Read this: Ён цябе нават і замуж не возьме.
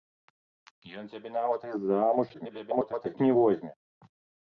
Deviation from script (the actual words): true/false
true